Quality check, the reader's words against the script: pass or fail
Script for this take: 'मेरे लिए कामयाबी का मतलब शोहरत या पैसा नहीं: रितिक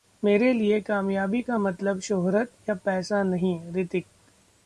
pass